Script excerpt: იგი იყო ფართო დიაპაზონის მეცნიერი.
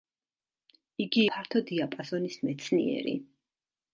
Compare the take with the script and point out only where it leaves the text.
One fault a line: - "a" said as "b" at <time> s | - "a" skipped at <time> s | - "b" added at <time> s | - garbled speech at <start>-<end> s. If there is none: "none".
- "იყო" skipped at 1.2 s